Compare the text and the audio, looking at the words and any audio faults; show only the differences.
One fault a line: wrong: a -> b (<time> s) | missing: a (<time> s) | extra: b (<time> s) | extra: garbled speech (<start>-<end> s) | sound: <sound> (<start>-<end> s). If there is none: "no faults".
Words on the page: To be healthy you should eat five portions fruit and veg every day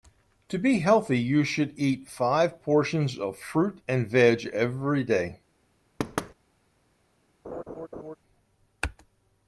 extra: of (3.2 s)
sound: thud (6.0-6.3 s)
sound: laugh (7.4-8.2 s)